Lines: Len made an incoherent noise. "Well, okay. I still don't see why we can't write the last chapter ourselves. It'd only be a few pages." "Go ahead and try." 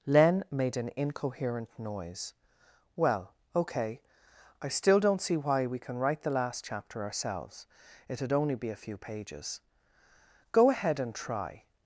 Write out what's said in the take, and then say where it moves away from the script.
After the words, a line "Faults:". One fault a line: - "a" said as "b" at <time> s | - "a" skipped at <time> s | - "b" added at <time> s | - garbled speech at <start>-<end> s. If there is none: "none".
Len made an incoherent noise. "Well, okay. I still don't see why we can write the last chapter ourselves. It'd only be a few pages." "Go ahead and try."
Faults:
- "can't" said as "can" at 5.8 s